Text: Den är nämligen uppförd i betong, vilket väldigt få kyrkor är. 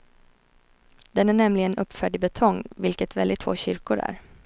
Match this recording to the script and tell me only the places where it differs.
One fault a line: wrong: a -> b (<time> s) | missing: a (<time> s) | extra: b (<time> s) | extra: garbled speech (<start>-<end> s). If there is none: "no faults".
no faults